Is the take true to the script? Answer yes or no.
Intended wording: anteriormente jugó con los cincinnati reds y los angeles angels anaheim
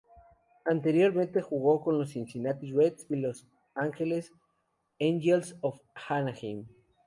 no